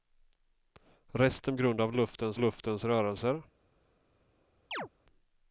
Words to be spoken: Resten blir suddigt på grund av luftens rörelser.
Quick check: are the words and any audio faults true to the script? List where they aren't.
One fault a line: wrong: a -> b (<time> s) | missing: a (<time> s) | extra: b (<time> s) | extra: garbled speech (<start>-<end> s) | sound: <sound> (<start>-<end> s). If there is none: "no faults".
missing: blir suddigt på (1.6 s)
extra: luftens (2.4 s)
sound: chirp (4.7-4.9 s)